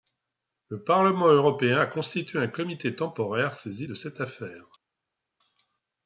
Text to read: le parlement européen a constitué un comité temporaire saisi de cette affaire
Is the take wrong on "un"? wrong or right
right